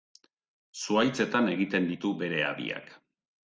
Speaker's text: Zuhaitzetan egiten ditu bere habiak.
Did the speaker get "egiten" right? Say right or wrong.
right